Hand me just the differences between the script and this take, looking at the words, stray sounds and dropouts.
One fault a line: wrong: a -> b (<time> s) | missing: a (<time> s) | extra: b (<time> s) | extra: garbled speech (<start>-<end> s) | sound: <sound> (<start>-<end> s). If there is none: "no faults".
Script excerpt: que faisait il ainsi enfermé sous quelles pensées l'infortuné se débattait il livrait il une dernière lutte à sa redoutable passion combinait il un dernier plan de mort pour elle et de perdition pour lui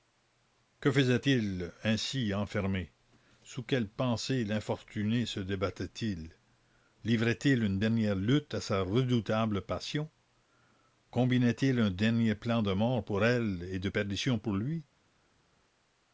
no faults